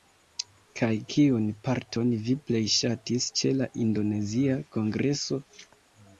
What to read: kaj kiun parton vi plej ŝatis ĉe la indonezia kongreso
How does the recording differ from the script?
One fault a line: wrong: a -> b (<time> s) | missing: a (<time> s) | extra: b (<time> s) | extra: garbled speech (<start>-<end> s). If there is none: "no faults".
no faults